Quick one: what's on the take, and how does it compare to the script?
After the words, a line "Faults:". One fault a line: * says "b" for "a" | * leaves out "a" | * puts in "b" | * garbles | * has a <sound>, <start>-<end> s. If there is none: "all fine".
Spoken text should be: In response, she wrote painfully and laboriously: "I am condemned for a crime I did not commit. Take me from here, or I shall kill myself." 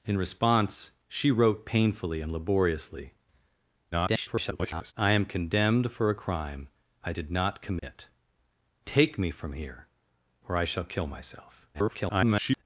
In response, she wrote painfully and laboriously: [garbled] "I am condemned for a crime I did not commit. Take me from here, or I shall kill myself." [garbled]
Faults:
* garbles
* has a dropout, 7.8-7.8 s
* garbles